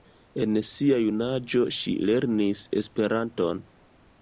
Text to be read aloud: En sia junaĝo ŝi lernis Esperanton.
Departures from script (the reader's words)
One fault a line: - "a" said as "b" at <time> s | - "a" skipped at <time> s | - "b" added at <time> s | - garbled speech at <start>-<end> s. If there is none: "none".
none